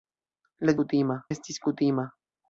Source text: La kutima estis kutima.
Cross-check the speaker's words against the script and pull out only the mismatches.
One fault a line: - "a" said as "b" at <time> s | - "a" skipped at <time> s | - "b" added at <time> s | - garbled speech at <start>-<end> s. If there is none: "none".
none